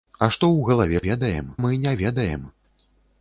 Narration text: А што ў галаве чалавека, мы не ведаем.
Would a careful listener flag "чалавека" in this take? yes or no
yes